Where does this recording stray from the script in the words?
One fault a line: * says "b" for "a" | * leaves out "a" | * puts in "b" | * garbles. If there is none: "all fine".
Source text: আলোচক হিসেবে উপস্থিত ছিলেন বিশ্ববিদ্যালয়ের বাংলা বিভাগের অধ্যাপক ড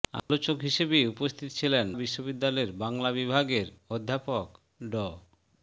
all fine